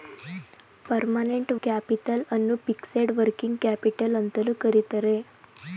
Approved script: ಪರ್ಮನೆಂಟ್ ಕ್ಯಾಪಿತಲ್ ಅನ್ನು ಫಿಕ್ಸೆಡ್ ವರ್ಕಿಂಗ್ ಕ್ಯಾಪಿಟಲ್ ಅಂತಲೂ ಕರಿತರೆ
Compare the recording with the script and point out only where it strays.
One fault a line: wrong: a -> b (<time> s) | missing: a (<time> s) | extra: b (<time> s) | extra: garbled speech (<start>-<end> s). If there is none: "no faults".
no faults